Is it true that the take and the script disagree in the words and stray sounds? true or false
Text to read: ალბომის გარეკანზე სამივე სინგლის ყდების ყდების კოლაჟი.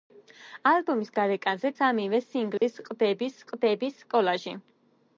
true